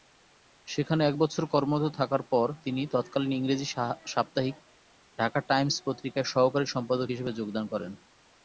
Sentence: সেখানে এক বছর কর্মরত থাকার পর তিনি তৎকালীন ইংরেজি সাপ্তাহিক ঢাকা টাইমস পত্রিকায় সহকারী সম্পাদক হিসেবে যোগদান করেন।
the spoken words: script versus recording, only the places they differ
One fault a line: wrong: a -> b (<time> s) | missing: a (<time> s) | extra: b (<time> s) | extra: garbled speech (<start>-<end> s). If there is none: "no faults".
no faults